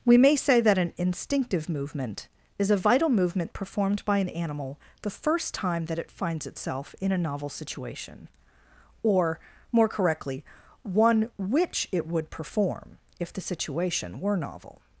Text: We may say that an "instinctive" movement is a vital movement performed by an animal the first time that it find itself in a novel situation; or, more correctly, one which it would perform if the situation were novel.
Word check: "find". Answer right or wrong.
wrong